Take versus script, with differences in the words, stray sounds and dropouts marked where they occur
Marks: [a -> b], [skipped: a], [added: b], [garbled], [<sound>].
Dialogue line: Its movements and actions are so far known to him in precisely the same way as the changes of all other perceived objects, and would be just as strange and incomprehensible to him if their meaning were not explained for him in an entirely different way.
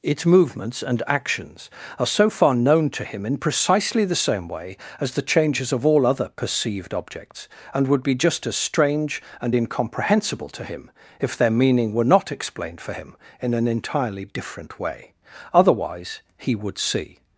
Its movements and actions are so far known to him in precisely the same way as the changes of all other perceived objects, and would be just as strange and incomprehensible to him if their meaning were not explained for him in an entirely different way. [added: Otherwise he would see]